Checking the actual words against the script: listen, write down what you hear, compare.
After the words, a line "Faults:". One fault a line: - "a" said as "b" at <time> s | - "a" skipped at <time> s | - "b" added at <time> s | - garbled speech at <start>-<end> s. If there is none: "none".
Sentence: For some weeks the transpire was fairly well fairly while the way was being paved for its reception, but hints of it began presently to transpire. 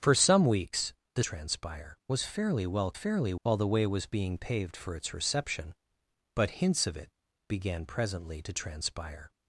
For some weeks the transpire was fairly well fairly while the way was being paved for its reception, but hints of it began presently to transpire.
Faults:
none